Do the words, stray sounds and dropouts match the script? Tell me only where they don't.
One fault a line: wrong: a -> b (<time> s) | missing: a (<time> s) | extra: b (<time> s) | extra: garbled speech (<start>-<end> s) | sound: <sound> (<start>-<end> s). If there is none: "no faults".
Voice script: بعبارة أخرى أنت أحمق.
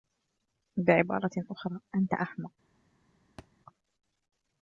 sound: thud (3.4-3.5 s)